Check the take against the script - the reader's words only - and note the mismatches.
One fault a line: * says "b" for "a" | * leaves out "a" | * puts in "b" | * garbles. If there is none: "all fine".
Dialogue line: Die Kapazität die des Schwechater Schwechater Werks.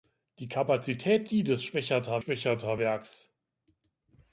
all fine